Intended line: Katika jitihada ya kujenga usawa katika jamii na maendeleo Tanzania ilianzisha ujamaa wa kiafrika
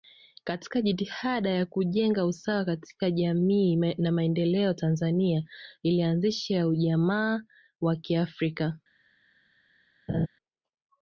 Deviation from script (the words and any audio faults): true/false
true